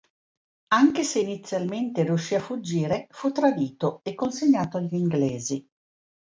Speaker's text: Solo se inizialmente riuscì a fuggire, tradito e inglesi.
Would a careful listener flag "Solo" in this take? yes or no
yes